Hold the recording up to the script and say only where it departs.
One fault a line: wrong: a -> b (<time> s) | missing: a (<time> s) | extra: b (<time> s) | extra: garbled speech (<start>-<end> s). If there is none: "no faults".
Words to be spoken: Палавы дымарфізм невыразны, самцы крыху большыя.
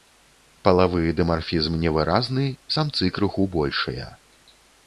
no faults